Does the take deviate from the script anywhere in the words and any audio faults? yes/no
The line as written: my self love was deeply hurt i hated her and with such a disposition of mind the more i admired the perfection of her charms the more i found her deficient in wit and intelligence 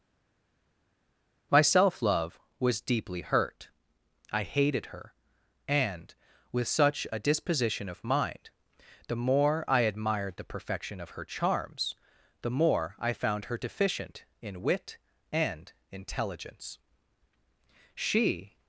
yes